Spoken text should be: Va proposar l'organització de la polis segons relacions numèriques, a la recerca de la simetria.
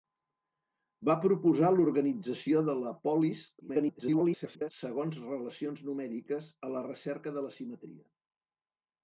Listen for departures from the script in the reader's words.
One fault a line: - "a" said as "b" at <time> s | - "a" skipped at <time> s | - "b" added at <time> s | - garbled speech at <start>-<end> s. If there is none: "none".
- garbled speech at 3.6-4.7 s